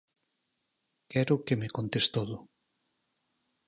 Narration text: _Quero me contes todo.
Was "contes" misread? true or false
false